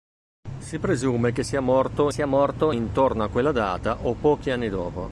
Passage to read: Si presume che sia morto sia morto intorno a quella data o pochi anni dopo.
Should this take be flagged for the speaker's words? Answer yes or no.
no